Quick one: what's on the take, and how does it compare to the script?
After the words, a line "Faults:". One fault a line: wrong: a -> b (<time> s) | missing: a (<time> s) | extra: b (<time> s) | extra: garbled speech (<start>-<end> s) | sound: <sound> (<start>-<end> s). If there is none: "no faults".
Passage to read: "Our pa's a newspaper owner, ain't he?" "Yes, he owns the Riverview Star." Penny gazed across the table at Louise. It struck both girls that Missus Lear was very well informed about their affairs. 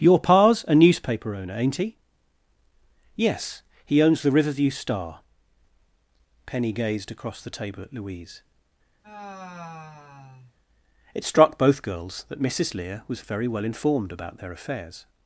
"Your pa's a newspaper owner, ain't he?" "Yes, he owns the Riverview Star." Penny gazed across the table at Louise. It struck both girls that Missus Lear was very well informed about their affairs.
Faults:
wrong: Our -> Your (0.0 s)
sound: sigh (9.0-10.5 s)